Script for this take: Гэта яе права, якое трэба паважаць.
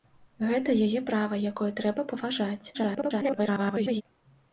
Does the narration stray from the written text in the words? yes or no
yes